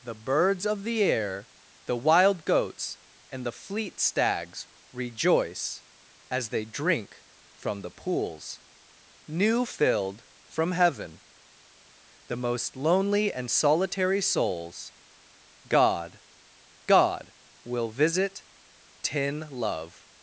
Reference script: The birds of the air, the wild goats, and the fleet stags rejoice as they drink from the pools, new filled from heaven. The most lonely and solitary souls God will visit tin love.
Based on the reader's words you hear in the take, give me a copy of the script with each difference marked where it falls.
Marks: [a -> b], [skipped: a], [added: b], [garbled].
The birds of the air, the wild goats, and the fleet stags rejoice as they drink from the pools, new filled from heaven. The most lonely and solitary souls God [added: God] will visit tin love.